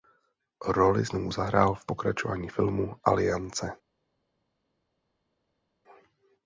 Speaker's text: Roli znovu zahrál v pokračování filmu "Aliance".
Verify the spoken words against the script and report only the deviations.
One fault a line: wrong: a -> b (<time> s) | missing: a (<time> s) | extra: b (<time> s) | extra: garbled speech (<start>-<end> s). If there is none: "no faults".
no faults